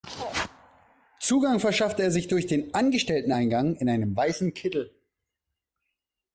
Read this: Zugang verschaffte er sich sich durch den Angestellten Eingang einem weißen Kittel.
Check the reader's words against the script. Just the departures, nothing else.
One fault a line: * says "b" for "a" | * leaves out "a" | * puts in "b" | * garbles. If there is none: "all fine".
* leaves out "sich"
* puts in "in"